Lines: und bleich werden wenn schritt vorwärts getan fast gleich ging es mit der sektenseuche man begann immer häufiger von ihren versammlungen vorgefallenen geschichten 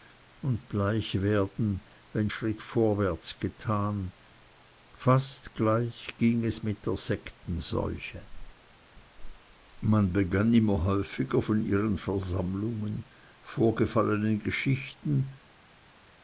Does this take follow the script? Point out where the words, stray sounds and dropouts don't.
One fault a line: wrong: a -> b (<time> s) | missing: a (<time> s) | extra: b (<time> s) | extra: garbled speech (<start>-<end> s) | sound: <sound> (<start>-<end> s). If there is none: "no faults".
no faults